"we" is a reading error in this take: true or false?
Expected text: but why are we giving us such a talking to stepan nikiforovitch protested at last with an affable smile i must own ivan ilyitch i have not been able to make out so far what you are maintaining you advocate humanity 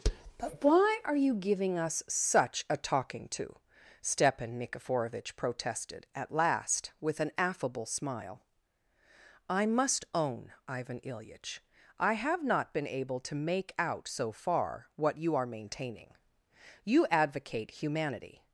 true